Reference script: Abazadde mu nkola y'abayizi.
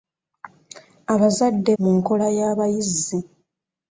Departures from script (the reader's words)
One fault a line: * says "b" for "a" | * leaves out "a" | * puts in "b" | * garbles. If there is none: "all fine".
all fine